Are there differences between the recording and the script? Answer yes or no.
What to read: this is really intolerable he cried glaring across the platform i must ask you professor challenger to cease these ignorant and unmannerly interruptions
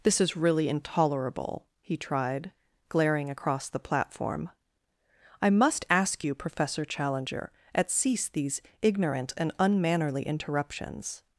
yes